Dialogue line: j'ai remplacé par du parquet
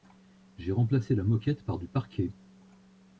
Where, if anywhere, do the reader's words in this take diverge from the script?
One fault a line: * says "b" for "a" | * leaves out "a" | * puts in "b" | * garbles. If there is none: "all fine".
* puts in "la moquette"